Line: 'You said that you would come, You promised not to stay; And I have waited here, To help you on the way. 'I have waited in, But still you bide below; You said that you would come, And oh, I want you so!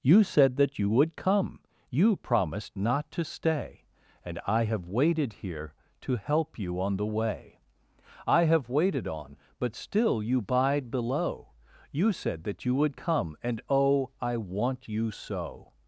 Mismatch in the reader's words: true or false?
true